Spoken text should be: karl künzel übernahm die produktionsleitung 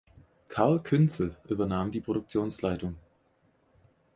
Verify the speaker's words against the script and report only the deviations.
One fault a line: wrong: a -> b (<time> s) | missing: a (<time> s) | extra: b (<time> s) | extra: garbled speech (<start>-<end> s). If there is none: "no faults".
no faults